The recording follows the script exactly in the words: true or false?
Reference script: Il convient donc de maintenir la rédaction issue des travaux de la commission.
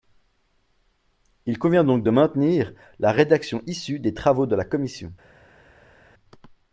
true